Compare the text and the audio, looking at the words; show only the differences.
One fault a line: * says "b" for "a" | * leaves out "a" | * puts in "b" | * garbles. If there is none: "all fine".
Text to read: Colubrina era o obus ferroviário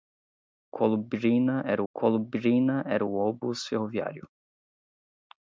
* puts in "colubrina era"